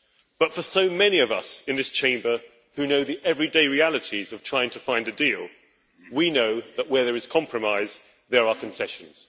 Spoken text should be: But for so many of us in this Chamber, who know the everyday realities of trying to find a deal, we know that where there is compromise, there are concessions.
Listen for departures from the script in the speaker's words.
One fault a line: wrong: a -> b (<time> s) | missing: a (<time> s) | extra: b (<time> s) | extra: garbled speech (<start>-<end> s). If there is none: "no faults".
no faults